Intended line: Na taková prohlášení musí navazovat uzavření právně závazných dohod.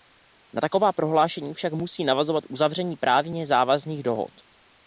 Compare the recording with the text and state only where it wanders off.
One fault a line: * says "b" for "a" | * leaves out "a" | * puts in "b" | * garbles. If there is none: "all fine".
* puts in "však"